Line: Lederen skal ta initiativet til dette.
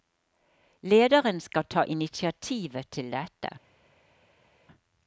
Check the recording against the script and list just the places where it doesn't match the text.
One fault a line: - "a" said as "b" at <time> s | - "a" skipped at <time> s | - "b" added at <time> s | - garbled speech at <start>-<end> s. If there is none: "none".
none